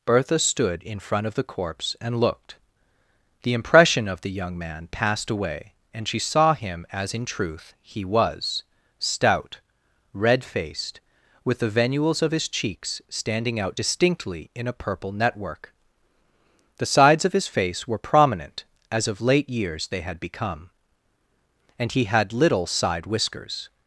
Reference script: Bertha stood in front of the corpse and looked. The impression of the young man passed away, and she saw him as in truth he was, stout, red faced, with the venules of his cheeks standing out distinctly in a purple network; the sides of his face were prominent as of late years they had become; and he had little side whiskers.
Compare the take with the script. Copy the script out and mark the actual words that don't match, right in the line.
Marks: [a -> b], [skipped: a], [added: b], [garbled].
Bertha stood in front of the corpse and looked. The impression of the young man passed away, and she saw him as in truth he was, stout, red faced, with the venules of his cheeks standing out distinctly in a purple network; the sides of his face were prominent as of late years they had become; and he had little side whiskers.